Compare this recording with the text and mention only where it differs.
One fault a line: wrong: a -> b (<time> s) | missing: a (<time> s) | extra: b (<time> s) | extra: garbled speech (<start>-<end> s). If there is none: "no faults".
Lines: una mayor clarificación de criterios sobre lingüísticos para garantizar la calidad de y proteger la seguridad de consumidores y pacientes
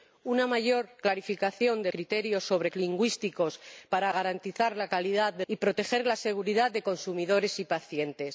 no faults